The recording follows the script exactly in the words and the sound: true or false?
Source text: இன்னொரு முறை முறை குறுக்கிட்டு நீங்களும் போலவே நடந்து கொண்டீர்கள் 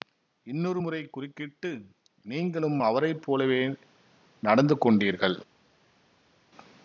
false